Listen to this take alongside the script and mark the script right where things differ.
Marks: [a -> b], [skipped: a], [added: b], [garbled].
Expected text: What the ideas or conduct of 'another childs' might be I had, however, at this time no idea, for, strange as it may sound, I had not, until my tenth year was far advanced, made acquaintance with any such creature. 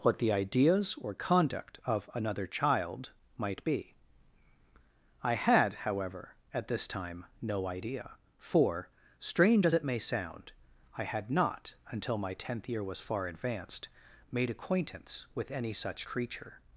What the ideas or conduct of 'another [childs' -> child] might be I had, however, at this time no idea, for, strange as it may sound, I had not, until my tenth year was far advanced, made acquaintance with any such creature.